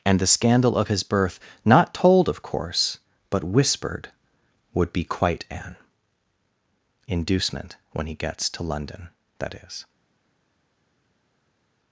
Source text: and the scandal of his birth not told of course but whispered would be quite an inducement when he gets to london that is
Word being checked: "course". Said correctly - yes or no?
yes